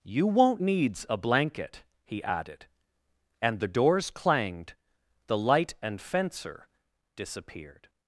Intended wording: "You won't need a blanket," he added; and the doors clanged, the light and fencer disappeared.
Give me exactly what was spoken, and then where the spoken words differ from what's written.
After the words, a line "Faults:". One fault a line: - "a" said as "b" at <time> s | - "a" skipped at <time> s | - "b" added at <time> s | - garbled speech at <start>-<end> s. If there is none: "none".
"You won't needs a blanket," he added; and the doors clanged, the light and fencer disappeared.
Faults:
- "need" said as "needs" at 0.6 s